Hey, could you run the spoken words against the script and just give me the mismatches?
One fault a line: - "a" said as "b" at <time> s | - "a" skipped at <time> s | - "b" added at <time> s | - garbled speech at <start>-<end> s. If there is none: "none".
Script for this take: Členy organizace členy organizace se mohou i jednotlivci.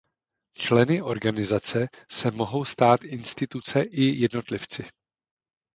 - "členy organizace se mohou" said as "se mohou stát instituce" at 2.1 s